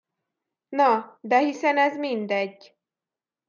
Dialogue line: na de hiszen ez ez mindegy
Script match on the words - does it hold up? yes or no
no